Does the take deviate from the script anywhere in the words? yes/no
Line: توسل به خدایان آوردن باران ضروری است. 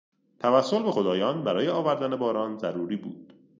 yes